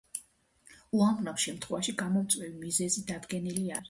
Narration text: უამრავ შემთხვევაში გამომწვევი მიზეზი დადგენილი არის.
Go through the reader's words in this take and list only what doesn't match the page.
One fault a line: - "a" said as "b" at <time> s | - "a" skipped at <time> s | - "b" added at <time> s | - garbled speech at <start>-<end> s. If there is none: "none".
none